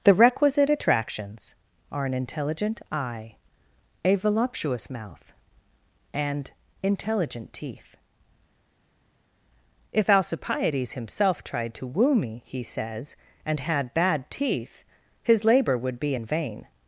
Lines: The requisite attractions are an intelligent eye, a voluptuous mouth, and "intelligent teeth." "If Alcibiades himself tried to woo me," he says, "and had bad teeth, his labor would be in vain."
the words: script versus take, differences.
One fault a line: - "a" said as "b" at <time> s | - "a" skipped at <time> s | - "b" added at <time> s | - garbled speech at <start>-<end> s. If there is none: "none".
none